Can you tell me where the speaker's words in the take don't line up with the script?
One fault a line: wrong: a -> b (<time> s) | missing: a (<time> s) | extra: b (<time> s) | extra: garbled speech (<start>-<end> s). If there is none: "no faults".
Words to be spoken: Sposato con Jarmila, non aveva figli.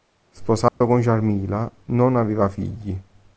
no faults